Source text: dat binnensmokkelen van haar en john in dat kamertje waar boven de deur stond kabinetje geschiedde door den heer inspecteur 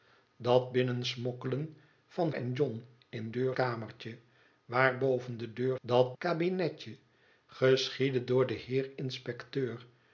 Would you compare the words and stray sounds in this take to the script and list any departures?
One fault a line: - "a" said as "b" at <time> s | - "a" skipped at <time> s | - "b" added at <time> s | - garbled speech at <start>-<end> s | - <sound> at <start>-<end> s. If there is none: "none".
- "haar" skipped at 2.3 s
- "dat" said as "deur" at 3.3 s
- "stond" said as "dat" at 5.8 s